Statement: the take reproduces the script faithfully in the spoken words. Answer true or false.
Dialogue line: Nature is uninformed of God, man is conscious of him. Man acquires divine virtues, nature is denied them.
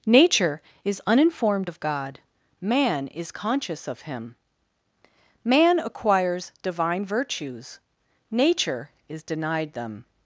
true